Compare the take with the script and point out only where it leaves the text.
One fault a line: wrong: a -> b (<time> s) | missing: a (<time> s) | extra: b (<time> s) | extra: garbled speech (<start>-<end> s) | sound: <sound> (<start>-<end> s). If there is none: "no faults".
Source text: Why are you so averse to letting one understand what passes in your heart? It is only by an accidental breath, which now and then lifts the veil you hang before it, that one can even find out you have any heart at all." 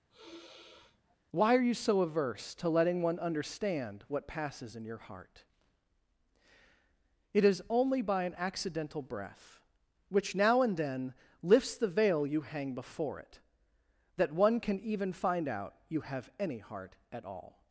sound: sigh (0.1-1.2 s)